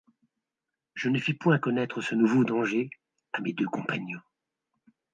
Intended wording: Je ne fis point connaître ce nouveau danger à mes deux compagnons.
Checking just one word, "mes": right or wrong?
right